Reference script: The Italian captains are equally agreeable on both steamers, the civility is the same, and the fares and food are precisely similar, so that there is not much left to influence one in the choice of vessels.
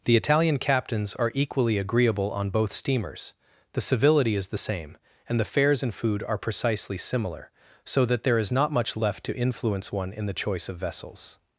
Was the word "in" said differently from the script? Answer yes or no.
no